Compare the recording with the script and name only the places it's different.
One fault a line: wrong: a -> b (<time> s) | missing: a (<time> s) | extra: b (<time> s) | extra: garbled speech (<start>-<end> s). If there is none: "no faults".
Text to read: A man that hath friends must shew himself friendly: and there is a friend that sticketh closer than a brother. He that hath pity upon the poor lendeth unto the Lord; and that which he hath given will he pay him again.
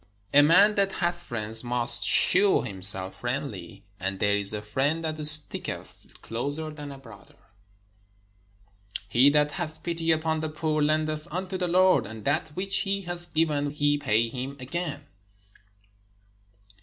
missing: will (13.7 s)